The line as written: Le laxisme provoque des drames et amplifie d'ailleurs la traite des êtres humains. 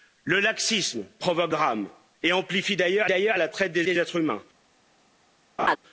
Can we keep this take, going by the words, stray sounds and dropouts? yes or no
no